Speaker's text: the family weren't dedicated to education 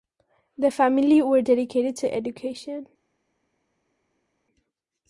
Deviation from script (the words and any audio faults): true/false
true